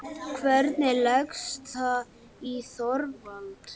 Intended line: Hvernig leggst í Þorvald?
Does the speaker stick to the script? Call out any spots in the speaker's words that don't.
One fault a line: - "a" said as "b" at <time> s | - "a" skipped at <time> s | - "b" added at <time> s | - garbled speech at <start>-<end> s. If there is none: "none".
- "það" added at 1.7 s